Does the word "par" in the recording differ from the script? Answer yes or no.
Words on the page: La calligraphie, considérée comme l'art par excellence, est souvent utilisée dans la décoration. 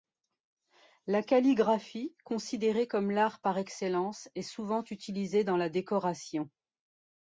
no